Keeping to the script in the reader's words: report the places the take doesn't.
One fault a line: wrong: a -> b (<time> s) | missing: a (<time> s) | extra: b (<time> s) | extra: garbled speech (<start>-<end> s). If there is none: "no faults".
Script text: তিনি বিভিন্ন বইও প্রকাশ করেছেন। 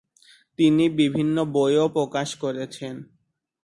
no faults